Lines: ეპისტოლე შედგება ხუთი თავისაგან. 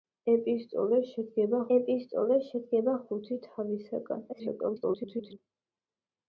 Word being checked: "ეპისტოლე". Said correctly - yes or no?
yes